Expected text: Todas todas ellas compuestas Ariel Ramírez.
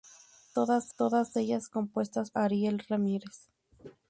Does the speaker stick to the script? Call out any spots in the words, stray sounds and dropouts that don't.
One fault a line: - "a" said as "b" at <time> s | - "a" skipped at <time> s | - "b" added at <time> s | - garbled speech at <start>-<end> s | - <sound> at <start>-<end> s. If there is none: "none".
none